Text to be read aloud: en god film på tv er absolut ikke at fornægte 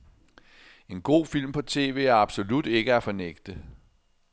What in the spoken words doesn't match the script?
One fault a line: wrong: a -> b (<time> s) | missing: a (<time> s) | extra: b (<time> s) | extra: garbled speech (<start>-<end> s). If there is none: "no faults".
no faults